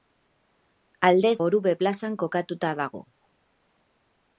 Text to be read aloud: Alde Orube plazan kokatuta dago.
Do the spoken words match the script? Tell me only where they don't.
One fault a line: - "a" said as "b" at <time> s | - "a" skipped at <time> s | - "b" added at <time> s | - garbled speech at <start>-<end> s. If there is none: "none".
none